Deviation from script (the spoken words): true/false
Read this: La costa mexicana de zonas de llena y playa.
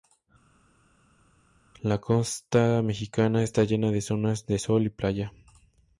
true